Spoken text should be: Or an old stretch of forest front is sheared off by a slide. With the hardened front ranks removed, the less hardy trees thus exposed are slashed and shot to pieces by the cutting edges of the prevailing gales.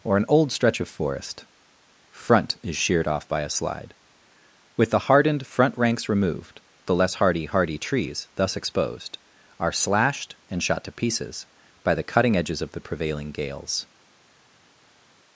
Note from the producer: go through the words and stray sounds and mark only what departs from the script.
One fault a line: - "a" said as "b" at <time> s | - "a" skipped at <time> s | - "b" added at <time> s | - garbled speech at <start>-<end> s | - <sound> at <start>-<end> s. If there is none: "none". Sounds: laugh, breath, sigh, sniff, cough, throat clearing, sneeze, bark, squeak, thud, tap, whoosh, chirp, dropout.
- "hardy" added at 7.5 s